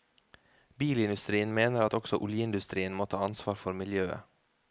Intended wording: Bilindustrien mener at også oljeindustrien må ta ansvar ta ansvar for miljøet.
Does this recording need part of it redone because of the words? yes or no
yes